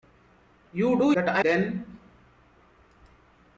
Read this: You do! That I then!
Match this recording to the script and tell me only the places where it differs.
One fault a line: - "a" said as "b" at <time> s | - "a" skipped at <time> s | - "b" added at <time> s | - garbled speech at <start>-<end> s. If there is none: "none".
none